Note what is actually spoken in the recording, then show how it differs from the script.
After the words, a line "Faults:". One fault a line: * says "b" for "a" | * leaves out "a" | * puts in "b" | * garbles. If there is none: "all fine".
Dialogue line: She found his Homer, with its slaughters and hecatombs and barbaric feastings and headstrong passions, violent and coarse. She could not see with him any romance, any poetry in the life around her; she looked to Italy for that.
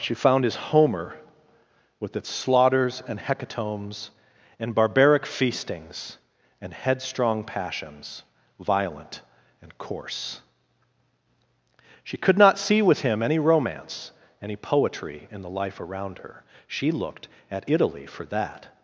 She found his Homer, with its slaughters and hecatombs and barbaric feastings and headstrong passions, violent and coarse. She could not see with him any romance, any poetry in the life around her; she looked at Italy for that.
Faults:
* says "at" for "to"